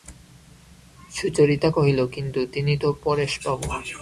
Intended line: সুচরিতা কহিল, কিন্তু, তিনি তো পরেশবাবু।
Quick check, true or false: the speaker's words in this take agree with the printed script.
true